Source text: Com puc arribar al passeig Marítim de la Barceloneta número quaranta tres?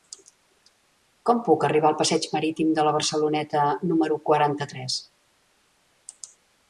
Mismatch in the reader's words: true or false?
false